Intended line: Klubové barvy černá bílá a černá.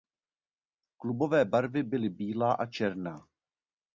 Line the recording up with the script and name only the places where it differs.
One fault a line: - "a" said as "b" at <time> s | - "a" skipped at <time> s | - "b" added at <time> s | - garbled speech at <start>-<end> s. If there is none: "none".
- "černá" said as "byly" at 1.8 s